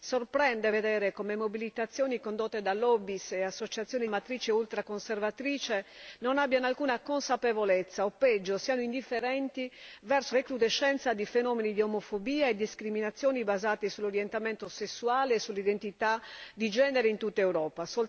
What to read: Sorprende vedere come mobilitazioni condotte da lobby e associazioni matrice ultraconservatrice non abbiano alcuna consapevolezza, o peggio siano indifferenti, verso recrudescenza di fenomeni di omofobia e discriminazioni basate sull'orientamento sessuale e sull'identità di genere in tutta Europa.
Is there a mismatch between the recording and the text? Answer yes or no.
no